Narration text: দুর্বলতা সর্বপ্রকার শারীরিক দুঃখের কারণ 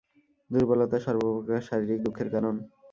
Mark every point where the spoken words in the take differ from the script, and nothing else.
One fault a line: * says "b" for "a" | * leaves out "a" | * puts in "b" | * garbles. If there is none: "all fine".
all fine